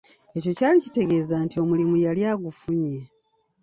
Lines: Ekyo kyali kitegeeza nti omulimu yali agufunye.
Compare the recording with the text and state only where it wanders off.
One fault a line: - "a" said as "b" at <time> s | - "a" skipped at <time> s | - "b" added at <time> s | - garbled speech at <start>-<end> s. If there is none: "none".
none